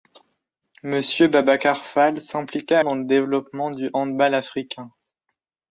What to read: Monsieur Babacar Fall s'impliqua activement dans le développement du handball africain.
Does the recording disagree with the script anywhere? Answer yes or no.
yes